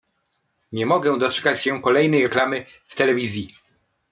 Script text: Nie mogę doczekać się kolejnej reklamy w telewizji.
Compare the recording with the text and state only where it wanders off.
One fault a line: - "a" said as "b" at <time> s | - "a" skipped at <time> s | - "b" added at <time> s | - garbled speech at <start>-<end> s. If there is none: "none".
none